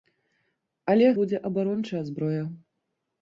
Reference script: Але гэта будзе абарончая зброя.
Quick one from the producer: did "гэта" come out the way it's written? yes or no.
no